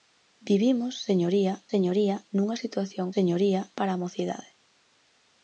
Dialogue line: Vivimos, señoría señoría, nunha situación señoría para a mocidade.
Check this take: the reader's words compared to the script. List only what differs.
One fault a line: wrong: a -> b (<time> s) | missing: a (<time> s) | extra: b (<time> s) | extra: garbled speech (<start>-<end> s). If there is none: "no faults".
no faults